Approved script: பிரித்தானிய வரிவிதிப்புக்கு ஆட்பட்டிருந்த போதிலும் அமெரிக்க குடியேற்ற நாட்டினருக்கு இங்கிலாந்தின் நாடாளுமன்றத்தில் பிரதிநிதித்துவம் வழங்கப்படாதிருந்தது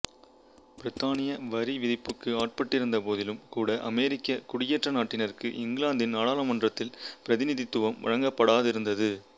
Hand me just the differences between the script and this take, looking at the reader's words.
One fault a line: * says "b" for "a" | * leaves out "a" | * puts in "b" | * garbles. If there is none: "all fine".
* puts in "கூட"